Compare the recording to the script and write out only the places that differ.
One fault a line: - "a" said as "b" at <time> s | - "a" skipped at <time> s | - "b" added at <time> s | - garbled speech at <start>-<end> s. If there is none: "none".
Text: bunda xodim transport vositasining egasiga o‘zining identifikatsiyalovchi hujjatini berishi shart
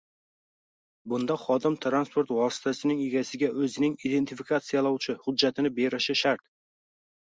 none